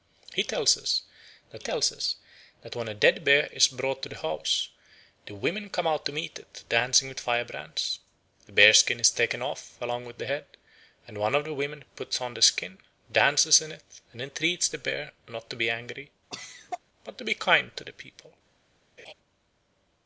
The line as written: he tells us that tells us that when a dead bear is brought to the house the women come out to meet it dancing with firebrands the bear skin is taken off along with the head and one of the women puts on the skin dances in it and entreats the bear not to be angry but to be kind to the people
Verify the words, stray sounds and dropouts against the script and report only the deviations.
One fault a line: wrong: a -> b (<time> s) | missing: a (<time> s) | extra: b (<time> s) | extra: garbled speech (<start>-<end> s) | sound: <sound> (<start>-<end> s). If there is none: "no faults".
sound: cough (16.3-16.8 s)
sound: laugh (19.0-19.1 s)